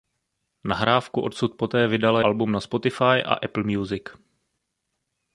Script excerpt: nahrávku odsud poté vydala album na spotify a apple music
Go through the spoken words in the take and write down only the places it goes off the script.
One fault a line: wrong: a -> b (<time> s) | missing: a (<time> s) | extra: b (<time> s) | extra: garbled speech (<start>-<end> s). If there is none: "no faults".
no faults